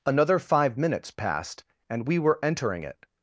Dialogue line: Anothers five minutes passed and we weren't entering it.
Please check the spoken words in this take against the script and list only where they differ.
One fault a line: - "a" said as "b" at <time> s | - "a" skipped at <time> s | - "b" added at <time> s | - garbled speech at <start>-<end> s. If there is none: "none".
- "Anothers" said as "Another" at 0.0 s
- "weren't" said as "were" at 2.2 s